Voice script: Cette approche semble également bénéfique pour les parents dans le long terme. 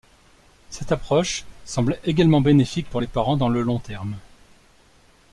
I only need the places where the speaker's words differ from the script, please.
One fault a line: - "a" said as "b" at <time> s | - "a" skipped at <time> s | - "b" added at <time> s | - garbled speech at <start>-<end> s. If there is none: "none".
none